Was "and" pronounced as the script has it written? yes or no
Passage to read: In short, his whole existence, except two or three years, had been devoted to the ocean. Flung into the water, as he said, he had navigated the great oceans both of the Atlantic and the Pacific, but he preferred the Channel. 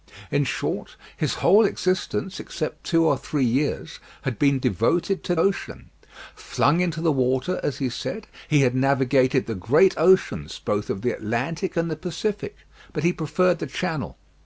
yes